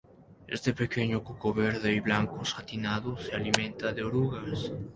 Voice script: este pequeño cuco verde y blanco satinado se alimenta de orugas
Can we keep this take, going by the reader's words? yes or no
yes